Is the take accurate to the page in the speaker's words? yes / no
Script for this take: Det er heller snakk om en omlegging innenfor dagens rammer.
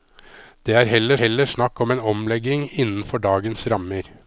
no